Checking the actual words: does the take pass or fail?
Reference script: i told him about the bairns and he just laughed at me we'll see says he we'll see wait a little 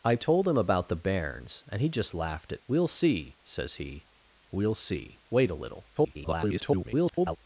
fail